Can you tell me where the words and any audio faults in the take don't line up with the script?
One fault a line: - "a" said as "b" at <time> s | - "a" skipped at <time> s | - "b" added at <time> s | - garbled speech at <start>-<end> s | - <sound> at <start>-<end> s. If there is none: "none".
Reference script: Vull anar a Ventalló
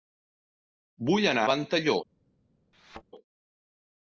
- "a" skipped at 1.4 s
- thud at 2.7-3.0 s